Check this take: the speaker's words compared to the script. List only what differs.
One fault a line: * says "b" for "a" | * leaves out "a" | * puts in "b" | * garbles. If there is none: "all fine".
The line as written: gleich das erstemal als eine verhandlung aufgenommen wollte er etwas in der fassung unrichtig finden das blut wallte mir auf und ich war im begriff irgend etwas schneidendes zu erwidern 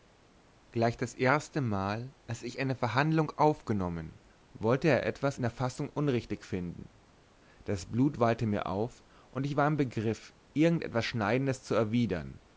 * puts in "ich"